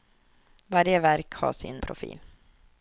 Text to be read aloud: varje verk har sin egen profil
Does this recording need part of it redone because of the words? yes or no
yes